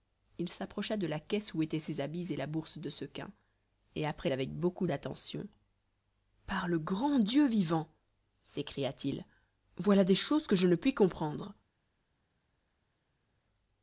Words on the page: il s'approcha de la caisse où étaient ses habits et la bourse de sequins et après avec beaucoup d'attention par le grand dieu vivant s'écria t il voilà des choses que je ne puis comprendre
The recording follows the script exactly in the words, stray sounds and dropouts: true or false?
true